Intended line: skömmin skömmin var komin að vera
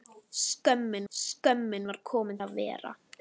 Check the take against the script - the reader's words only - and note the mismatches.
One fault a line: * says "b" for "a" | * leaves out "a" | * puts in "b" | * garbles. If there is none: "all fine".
all fine